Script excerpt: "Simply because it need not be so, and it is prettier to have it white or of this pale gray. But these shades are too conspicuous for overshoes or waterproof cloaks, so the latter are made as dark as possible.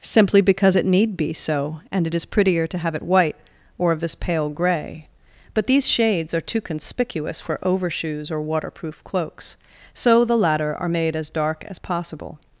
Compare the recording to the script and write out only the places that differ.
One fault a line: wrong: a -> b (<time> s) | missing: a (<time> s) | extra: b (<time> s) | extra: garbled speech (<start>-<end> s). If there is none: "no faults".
missing: not (1.2 s)